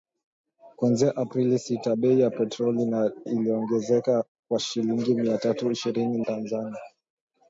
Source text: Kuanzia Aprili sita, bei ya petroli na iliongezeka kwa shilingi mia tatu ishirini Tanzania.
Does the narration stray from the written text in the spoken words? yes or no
no